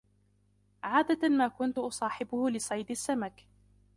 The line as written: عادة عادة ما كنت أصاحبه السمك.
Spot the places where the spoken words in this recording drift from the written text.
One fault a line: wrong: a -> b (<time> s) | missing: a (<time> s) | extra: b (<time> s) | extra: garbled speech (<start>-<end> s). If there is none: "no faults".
missing: عادة (1.3 s)
extra: لصيد (2.5 s)